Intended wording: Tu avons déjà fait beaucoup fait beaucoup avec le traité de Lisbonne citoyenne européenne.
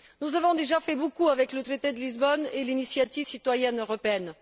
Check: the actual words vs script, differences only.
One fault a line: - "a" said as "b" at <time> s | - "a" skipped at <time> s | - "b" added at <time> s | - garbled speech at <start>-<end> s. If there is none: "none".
- "Tu" said as "Nous" at 0.2 s
- "fait beaucoup" skipped at 1.3 s
- "et l'initiative" added at 2.5 s